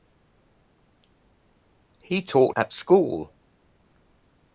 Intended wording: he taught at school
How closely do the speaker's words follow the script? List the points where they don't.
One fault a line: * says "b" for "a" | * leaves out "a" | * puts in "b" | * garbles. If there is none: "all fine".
all fine